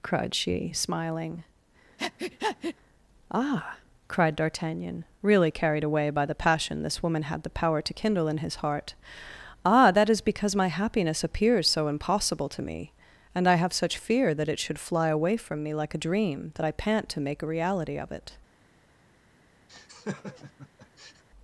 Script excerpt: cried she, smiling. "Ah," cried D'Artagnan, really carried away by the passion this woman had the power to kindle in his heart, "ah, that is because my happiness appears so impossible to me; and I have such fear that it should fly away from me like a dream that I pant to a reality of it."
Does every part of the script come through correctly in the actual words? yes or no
no